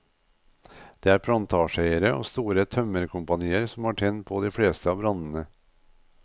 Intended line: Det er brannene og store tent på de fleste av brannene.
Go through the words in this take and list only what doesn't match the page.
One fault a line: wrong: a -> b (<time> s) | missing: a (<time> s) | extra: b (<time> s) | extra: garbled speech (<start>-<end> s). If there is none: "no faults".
wrong: brannene -> plantasjeeiere (1.3 s)
extra: tømmerkompanier som har (2.8 s)